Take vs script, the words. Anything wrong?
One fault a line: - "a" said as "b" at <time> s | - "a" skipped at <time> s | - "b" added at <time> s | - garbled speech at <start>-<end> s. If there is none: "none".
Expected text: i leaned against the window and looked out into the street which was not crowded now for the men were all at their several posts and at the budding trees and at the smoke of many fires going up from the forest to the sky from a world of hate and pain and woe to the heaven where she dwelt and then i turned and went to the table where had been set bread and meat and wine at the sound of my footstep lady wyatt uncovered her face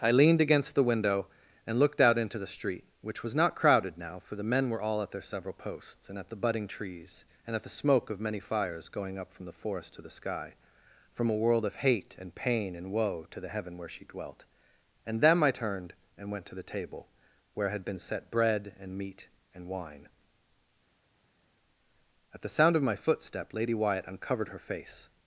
- "then" said as "them" at 15.2 s